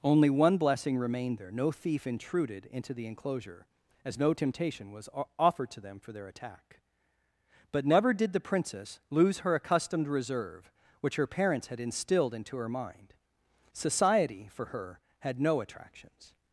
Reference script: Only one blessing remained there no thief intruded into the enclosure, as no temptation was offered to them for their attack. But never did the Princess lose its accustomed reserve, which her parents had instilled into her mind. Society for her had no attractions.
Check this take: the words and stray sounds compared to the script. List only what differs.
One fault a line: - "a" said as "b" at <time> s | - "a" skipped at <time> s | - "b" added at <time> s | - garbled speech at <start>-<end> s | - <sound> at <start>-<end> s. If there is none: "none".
- "its" said as "her" at 9.4 s